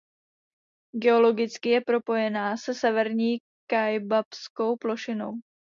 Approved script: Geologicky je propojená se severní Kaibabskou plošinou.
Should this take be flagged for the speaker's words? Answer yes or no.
no